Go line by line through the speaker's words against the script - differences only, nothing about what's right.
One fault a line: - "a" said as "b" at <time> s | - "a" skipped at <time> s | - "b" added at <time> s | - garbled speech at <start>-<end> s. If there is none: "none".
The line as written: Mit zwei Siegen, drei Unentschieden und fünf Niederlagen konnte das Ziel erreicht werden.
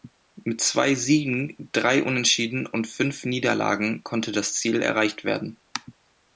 none